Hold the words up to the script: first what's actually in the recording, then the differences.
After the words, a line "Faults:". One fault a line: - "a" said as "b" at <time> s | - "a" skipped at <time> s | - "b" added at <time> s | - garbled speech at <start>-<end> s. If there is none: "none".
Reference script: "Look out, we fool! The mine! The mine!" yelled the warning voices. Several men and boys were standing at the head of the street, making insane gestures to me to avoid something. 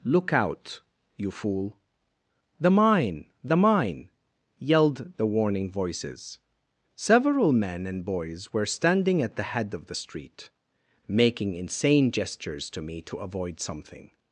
"Look out, you fool! The mine! The mine!" yelled the warning voices. Several men and boys were standing at the head of the street, making insane gestures to me to avoid something.
Faults:
- "we" said as "you" at 1.1 s